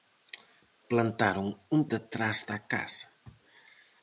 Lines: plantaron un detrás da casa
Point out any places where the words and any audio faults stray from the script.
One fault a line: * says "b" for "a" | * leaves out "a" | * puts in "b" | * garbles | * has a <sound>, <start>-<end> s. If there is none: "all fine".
all fine